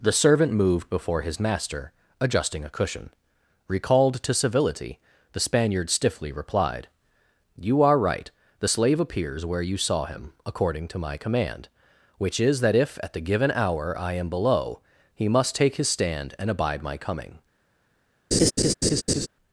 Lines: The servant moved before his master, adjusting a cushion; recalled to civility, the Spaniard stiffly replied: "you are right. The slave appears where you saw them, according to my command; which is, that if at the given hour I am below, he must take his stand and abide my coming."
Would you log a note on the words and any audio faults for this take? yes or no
yes